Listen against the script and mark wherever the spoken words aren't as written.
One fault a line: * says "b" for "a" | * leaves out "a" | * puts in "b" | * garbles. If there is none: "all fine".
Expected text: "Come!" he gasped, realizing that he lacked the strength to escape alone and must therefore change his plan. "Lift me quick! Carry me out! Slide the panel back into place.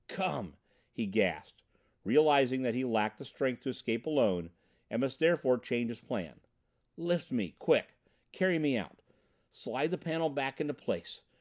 all fine